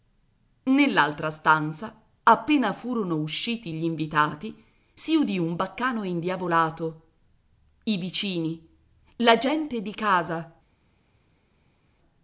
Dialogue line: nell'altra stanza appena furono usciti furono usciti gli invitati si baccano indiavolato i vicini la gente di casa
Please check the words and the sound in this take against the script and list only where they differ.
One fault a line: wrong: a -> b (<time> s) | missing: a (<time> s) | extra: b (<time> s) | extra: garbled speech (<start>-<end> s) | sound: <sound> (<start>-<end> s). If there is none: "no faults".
missing: furono usciti (3.7 s)
extra: udì un (5.2 s)